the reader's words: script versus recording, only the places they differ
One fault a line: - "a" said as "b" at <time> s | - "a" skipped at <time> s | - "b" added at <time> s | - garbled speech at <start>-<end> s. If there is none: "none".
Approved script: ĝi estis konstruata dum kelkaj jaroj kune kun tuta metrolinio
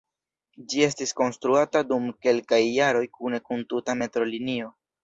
none